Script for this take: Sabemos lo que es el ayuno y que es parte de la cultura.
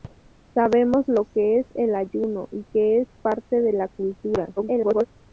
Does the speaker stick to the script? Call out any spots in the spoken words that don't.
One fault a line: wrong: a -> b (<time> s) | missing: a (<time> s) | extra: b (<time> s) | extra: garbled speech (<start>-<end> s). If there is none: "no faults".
extra: garbled speech (4.6-5.1 s)